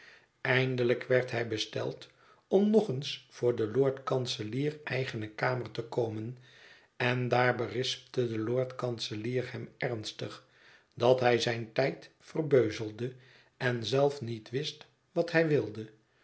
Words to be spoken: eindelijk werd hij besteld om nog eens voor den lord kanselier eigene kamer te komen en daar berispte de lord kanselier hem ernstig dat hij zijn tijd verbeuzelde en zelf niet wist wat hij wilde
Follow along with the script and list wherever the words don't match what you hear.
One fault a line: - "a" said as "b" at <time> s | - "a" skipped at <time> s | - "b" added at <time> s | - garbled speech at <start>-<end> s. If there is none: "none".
none